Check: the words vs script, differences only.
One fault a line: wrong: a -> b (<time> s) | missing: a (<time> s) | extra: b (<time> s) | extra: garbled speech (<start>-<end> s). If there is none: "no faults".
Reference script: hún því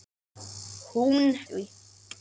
no faults